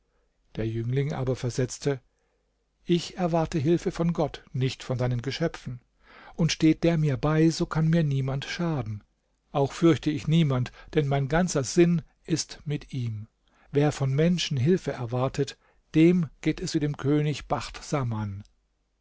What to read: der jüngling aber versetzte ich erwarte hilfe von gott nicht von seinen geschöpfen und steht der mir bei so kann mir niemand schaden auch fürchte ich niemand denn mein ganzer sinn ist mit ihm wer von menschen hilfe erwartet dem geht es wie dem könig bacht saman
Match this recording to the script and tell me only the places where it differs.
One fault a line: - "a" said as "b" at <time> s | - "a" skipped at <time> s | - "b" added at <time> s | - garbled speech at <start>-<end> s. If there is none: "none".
none